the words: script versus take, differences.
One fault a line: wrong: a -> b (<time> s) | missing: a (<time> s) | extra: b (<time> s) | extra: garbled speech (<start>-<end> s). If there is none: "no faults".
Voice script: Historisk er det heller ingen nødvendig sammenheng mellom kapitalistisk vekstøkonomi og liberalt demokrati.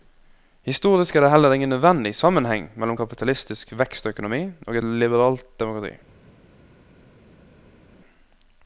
no faults